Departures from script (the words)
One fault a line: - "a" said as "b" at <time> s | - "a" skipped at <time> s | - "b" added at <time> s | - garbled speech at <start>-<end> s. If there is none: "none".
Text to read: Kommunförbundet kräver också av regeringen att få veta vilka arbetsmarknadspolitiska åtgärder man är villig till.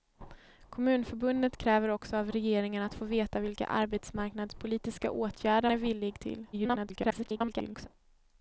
- "man" skipped at 5.7 s
- garbled speech at 6.5-7.9 s